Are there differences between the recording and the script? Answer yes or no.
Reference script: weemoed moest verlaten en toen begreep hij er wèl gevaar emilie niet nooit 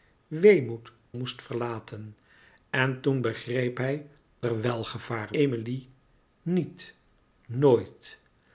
no